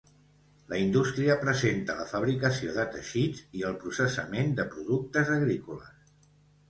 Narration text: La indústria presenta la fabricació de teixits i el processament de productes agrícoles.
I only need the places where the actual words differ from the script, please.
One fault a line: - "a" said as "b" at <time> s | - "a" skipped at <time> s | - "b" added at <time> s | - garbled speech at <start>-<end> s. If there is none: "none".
none